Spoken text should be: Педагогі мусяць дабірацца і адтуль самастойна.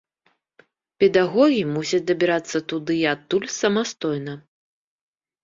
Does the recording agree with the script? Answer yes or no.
no